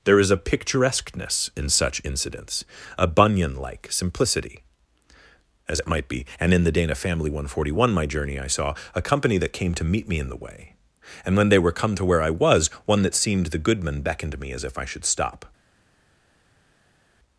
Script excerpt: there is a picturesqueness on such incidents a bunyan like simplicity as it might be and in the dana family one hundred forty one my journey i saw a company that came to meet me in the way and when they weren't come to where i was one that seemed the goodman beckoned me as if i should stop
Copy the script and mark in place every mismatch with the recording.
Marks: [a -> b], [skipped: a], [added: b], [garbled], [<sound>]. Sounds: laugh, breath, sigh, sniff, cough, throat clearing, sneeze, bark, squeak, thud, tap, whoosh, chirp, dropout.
there is a picturesqueness [on -> in] such incidents a bunyan like simplicity as it might be and in the dana family one hundred forty one my journey i saw a company that came to meet me in the way and when they [weren't -> were] come to where i was one that seemed the goodman beckoned me as if i should stop